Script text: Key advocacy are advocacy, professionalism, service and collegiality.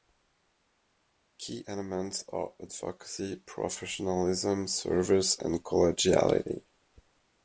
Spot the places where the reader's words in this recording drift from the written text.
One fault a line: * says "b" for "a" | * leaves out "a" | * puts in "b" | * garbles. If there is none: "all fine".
* says "elements" for "advocacy"